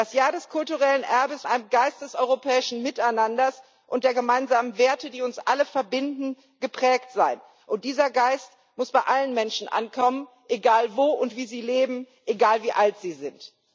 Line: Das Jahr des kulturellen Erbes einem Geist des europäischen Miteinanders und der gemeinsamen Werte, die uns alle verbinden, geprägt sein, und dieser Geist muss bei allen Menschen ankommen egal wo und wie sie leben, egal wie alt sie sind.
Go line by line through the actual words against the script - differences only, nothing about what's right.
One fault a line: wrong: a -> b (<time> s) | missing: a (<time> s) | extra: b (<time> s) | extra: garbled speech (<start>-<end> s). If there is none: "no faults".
no faults